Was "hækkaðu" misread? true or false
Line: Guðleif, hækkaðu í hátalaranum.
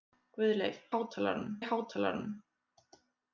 true